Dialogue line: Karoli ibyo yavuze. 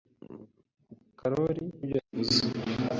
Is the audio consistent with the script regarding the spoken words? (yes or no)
yes